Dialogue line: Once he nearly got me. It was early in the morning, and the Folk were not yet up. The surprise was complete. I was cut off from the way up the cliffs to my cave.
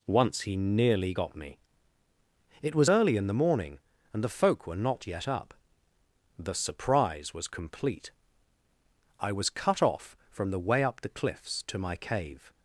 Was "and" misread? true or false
false